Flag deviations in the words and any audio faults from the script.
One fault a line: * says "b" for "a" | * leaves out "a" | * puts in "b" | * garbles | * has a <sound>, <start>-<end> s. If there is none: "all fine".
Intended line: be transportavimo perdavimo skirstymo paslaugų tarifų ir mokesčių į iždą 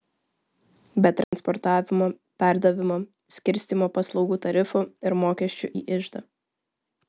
* has a dropout, 1.2-1.3 s